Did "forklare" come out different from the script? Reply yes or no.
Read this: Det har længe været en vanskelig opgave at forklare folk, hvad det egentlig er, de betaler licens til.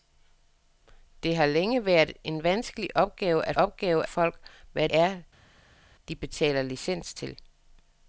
yes